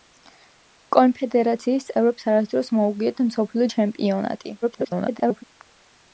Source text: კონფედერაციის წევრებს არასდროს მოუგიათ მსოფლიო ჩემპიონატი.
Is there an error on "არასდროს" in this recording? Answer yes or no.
no